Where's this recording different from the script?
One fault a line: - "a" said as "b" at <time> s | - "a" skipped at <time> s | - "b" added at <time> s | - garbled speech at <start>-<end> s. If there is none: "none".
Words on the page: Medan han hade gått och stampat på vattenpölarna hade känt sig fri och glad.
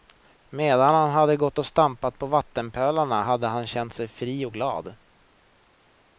- "han" added at 3.5 s